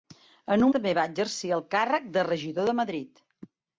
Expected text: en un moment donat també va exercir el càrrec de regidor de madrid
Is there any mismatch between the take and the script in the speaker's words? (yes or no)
yes